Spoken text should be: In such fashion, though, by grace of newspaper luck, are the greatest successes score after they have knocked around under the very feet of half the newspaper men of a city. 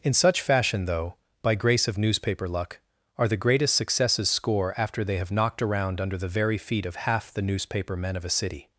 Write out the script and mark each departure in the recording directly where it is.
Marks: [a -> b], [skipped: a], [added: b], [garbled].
In such fashion, though, by grace of newspaper luck, are the greatest successes score after they have knocked around under the very feet of half the newspaper men of a city.